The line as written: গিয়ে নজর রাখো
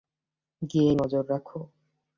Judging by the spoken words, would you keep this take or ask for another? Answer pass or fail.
pass